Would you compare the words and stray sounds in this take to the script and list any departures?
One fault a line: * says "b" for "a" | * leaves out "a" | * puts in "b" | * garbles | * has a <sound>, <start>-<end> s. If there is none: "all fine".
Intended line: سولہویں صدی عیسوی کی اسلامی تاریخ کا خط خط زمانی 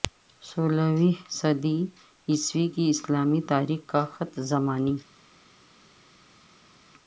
* leaves out "خط"